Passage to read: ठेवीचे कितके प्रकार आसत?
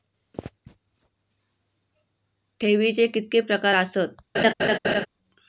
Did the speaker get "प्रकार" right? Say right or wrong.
right